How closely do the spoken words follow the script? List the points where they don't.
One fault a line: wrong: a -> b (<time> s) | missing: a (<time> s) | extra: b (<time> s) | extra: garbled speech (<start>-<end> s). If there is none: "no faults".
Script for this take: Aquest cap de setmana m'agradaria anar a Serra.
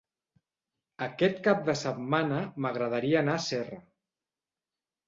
no faults